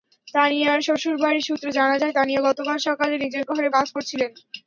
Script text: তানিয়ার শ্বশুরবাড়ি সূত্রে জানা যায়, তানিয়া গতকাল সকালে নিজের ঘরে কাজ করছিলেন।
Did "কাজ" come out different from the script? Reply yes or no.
no